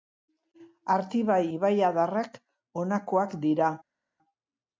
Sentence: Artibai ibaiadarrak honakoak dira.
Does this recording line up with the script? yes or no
yes